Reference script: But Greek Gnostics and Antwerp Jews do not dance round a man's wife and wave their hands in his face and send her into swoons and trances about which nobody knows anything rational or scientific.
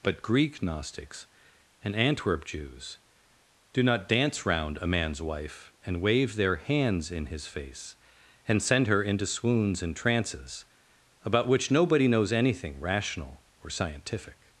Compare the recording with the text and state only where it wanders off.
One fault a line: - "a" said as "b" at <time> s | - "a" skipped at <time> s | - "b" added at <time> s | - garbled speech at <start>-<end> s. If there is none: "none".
none